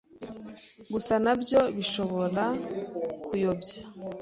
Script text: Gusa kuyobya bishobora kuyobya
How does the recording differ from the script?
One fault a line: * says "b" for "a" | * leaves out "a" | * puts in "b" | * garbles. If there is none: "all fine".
* says "nabyo" for "kuyobya"